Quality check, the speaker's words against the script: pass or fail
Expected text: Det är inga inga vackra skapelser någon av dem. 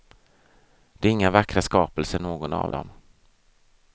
fail